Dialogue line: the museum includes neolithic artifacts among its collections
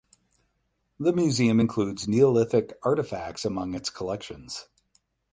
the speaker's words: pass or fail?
pass